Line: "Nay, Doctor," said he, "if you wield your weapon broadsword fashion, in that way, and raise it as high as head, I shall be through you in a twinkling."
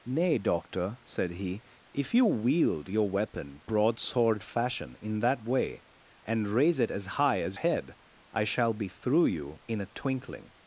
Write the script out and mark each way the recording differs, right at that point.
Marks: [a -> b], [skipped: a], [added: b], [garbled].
"Nay, Doctor," said he, "if you wield your weapon broadsword fashion, in that way, and raise it as high as head, I shall be through you in a twinkling."